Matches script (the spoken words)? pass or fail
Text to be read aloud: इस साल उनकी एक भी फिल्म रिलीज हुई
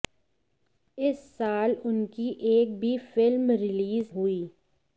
pass